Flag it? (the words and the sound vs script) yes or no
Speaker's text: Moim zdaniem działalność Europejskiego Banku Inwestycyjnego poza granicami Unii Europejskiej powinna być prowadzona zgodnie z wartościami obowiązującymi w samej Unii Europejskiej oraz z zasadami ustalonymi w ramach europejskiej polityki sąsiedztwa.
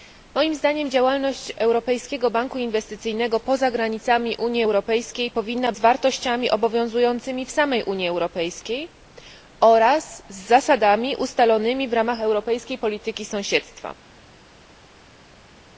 yes